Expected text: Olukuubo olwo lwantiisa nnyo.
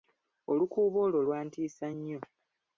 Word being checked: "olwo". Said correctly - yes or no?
yes